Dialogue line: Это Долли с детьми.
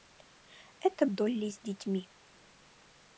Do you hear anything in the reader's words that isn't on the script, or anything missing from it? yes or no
no